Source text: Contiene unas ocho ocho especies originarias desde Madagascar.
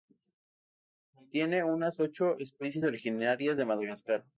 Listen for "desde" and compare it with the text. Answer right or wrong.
wrong